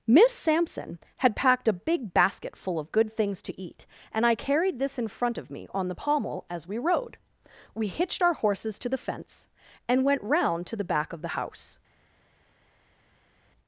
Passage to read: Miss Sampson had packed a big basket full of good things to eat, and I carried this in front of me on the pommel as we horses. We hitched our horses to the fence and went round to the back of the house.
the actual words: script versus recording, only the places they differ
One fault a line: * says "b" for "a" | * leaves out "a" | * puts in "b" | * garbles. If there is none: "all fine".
* says "rode" for "horses"